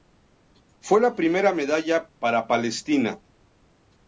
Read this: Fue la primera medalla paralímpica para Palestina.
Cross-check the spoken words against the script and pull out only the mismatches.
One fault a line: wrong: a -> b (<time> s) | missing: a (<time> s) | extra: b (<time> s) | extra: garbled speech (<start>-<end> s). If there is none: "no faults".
missing: paralímpica (2.1 s)